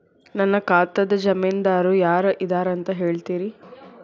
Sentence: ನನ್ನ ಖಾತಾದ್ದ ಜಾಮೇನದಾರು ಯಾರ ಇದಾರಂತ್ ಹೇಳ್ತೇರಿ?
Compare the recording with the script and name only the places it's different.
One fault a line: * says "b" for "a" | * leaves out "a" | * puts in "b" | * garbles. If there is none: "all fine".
all fine